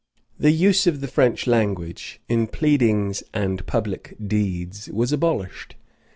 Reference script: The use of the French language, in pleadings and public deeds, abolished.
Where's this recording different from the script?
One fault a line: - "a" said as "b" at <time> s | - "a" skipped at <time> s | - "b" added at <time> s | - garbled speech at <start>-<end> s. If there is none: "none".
- "was" added at 4.9 s